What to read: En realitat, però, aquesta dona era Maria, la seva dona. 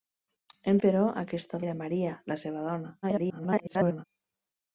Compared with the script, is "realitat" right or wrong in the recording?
wrong